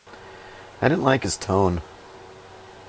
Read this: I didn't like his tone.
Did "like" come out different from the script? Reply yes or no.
no